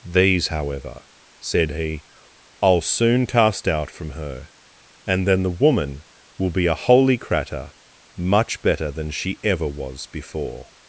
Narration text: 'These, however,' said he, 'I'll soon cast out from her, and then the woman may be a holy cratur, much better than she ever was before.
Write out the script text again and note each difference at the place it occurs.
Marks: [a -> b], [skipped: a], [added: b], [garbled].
'These, however,' said he, 'I'll soon cast out from her, and then the woman [may -> will] be a holy cratur, much better than she ever was before.